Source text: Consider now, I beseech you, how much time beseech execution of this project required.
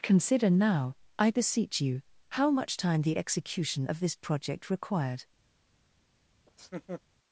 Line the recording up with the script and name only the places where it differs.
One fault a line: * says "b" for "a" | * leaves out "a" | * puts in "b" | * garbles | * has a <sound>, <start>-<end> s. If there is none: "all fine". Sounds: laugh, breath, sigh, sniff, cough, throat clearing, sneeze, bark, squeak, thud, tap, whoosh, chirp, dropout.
* says "the" for "beseech"
* has a laugh, 6.5-7.0 s